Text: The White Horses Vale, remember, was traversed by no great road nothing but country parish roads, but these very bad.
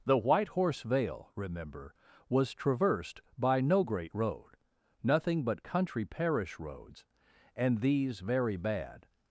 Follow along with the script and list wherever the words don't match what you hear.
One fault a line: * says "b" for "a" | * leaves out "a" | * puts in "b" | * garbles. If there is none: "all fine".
* says "Horse" for "Horses"
* says "and" for "but"